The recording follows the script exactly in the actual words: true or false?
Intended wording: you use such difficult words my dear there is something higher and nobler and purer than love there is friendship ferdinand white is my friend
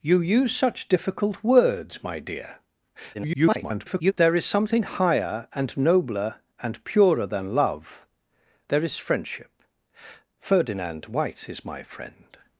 false